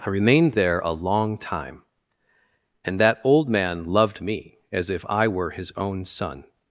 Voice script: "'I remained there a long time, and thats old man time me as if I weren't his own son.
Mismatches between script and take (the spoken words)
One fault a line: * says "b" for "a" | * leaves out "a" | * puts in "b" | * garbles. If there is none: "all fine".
* says "that" for "thats"
* says "loved" for "time"
* says "were" for "weren't"